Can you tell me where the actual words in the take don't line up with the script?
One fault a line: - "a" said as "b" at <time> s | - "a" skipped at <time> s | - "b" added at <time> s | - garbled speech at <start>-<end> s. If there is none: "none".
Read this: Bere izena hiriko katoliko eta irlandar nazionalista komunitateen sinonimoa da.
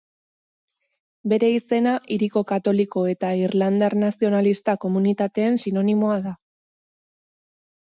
none